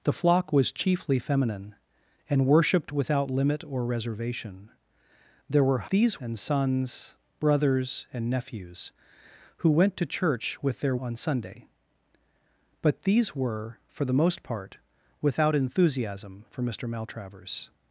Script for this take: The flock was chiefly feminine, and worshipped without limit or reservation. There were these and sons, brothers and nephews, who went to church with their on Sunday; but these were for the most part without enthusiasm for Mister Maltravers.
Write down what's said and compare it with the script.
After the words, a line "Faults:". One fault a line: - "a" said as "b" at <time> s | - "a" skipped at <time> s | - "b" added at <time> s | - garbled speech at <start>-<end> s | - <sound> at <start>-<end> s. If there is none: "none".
The flock was chiefly feminine, and worshipped without limit or reservation. There were these and sons, brothers and nephews, who went to church with their on Sunday; but these were for the most part without enthusiasm for Mister Maltravers.
Faults:
none